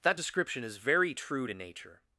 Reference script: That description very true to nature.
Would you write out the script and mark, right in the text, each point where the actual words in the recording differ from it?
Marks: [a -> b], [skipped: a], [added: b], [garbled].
That description [added: is] very true to nature.